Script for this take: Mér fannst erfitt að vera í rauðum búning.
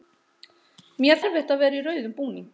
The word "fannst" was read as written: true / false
false